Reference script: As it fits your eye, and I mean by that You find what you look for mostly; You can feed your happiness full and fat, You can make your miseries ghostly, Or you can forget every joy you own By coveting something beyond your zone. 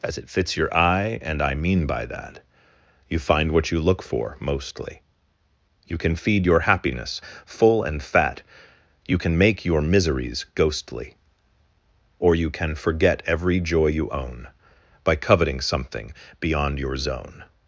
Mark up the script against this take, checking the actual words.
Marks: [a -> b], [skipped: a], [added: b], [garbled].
As it fits your eye, and I mean by that You find what you look for mostly; You can feed your happiness full and fat, You can make your miseries ghostly, Or you can forget every joy you own By coveting something beyond your zone.